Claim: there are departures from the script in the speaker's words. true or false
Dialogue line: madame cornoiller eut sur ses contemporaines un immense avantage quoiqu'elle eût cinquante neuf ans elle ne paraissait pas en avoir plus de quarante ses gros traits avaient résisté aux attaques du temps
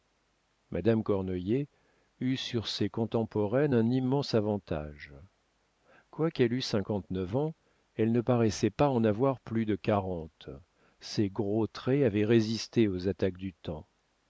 false